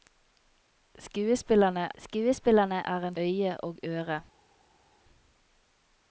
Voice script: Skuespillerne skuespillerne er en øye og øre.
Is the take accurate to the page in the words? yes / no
yes